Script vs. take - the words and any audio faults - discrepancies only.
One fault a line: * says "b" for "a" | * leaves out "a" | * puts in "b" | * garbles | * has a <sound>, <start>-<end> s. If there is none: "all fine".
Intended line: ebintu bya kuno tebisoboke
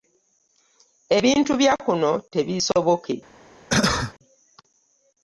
* has a cough, 3.7-4.1 s